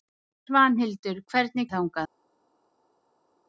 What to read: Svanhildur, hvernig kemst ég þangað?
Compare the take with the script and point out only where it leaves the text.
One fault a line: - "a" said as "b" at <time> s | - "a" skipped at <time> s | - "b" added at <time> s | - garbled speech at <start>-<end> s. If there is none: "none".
- "kemst" skipped at 1.7 s